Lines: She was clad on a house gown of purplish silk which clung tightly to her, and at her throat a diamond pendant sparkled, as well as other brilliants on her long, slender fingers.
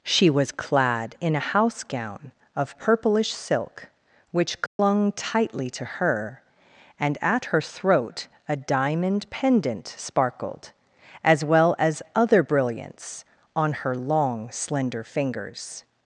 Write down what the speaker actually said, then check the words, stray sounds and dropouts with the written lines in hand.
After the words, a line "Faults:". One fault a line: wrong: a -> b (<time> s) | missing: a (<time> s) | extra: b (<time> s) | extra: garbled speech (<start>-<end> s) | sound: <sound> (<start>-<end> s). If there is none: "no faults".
She was clad in a house gown of purplish silk which clung tightly to her, and at her throat a diamond pendant sparkled, as well as other brilliants on her long, slender fingers.
Faults:
wrong: on -> in (1.2 s)
sound: dropout (4.7-4.8 s)